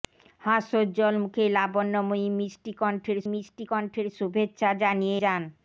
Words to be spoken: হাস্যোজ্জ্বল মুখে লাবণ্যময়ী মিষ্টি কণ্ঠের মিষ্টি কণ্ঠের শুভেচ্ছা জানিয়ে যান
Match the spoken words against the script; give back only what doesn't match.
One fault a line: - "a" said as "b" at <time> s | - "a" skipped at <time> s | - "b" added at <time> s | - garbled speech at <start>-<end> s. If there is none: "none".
none